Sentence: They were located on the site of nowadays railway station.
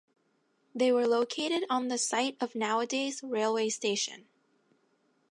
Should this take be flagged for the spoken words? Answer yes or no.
no